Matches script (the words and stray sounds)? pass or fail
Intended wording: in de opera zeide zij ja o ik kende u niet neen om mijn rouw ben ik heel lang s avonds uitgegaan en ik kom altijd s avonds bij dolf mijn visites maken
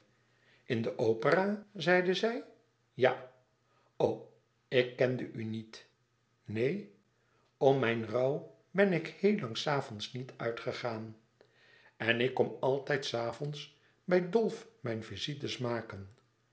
fail